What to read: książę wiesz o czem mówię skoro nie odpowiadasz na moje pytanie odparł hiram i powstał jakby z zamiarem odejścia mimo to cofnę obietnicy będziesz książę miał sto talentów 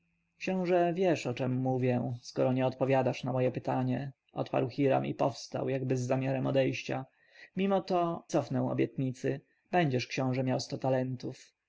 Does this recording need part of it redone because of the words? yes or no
no